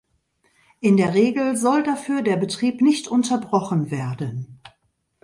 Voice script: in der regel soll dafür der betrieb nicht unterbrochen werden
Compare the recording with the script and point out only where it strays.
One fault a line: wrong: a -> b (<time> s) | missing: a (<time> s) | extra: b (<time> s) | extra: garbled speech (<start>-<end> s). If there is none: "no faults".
no faults